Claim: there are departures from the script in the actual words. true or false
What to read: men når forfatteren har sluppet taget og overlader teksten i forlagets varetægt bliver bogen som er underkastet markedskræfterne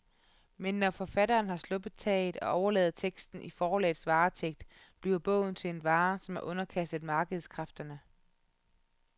true